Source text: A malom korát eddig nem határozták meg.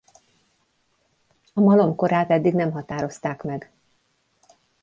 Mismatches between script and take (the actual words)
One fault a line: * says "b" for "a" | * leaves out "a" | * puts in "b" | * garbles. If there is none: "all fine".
all fine